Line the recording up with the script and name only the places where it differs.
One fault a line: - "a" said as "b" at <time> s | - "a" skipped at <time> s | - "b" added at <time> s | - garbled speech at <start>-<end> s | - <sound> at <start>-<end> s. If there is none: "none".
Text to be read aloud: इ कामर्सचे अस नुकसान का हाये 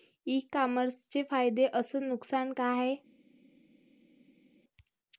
- "फायदे" added at 1.2 s